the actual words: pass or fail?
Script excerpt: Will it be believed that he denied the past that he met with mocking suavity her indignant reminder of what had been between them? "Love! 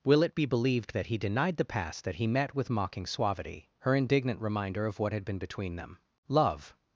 pass